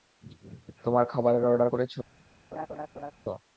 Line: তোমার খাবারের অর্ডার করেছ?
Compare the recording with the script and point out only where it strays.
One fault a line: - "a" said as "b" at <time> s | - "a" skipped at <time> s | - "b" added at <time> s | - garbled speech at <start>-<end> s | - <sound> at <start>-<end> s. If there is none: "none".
- laugh at 2.5-3.1 s